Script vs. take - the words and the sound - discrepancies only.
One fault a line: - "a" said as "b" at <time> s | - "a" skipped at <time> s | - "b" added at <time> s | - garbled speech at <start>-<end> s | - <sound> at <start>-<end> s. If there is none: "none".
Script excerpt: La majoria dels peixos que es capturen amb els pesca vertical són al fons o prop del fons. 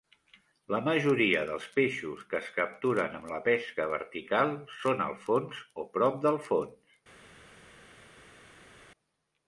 - "els" said as "la" at 3.3 s